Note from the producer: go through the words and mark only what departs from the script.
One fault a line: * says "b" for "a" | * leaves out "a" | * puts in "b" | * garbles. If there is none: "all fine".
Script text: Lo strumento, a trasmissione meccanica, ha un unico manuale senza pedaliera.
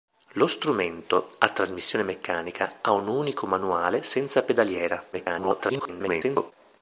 * garbles